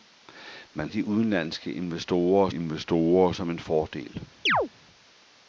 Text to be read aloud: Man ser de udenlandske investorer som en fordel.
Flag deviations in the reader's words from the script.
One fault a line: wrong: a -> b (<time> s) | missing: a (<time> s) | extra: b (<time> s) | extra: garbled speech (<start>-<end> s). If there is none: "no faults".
missing: ser (0.9 s)
extra: investorer (2.5 s)